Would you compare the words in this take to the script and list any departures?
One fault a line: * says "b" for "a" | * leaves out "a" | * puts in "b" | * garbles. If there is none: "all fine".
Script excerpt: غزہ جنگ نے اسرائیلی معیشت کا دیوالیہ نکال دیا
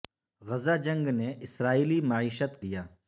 * leaves out "کا دیوالیہ نکال"